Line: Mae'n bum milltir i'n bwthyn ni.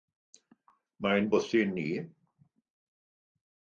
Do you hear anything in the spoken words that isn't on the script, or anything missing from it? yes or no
yes